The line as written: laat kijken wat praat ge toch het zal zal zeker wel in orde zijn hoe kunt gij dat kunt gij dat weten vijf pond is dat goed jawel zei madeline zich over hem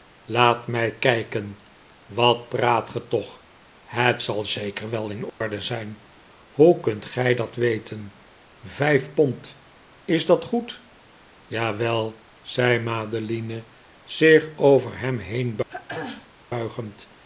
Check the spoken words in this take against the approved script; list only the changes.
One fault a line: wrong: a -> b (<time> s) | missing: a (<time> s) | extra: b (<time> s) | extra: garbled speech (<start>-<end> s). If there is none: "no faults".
extra: mij (0.7 s)
missing: zal (4.4 s)
missing: kunt gij dat (7.5 s)